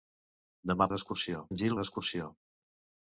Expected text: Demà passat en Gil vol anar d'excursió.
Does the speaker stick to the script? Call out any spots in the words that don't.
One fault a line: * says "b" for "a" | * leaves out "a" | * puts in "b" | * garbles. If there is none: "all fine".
* says "d'excursió" for "passat"
* leaves out "vol anar"